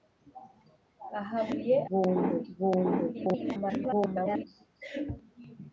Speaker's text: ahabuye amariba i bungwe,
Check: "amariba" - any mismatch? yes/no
yes